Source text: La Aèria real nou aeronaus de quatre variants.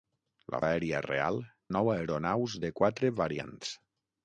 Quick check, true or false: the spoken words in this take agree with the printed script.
true